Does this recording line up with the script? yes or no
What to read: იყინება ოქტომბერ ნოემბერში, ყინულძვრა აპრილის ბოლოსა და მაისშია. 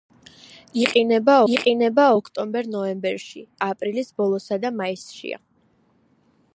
no